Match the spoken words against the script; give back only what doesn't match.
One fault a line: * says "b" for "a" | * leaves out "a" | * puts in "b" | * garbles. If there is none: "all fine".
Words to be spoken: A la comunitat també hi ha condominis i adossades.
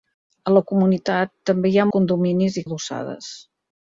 all fine